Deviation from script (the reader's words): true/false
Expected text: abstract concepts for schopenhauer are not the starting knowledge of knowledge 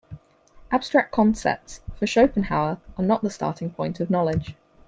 true